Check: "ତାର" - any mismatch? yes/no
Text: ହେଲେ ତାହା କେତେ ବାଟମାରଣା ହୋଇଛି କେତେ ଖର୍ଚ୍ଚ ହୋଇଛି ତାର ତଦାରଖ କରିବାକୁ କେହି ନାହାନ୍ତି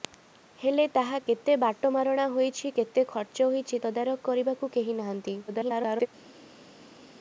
yes